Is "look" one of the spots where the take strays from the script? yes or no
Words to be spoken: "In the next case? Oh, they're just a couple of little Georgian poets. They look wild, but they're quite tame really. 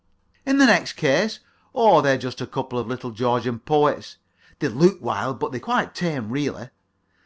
no